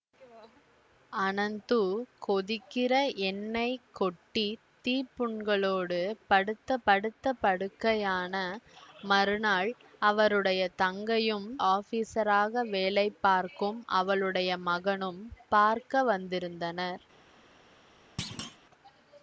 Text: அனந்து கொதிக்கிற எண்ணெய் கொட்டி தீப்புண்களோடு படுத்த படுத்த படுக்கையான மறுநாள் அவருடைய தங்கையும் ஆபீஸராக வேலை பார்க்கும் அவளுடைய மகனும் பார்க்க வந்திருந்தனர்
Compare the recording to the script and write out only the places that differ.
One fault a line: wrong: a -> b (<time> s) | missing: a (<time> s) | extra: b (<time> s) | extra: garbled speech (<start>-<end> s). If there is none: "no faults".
no faults